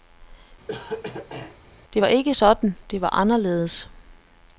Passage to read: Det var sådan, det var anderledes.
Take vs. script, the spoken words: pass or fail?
fail